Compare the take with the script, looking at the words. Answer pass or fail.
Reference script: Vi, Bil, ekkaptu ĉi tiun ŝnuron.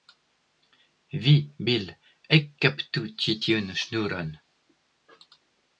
pass